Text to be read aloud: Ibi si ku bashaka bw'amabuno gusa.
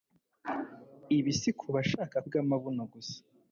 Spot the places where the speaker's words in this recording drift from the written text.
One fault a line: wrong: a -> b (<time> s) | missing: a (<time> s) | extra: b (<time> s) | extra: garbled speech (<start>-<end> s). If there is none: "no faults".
no faults